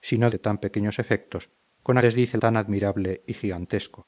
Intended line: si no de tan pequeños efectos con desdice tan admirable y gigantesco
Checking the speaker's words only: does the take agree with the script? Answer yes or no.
yes